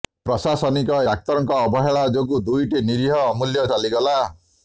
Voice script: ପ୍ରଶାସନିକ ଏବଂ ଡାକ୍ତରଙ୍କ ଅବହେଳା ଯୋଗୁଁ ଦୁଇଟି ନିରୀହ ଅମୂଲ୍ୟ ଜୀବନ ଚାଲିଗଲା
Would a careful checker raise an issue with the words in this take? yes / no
yes